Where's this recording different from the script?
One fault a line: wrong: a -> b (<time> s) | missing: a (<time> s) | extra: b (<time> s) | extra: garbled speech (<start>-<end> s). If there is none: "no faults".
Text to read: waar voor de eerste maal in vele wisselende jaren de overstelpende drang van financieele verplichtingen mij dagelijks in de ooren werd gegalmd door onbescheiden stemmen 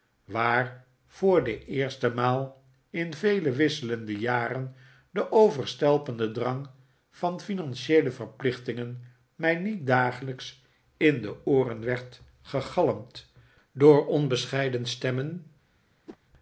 extra: niet (9.6 s)